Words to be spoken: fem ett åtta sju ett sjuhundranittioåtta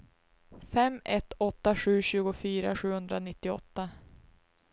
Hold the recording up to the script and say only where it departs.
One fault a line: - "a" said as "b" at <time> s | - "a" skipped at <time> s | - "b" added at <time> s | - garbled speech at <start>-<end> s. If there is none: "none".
- "ett" said as "tjugofyra" at 2.0 s